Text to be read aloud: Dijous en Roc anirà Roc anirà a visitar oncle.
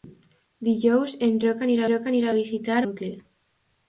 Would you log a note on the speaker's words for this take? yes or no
no